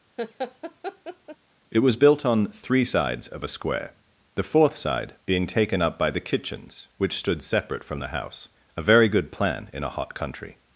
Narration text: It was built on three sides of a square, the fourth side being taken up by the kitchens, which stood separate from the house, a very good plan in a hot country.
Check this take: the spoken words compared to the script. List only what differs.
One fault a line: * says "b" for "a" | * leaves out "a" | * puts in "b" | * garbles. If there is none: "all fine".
all fine